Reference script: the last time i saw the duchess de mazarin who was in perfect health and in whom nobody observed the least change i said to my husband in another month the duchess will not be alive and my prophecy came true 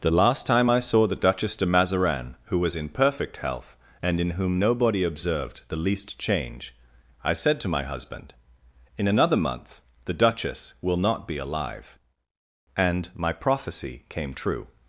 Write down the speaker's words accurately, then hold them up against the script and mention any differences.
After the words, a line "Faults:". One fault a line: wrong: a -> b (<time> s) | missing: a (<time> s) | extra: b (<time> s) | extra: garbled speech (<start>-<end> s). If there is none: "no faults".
the last time i saw the duchess de mazarin who was in perfect health and in whom nobody observed the least change i said to my husband in another month the duchess will not be alive and my prophecy came true
Faults:
no faults